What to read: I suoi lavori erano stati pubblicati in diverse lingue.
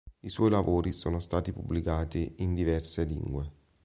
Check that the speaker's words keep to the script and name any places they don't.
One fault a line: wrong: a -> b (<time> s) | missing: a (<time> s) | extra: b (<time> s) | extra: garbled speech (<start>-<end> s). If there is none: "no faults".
wrong: erano -> sono (0.9 s)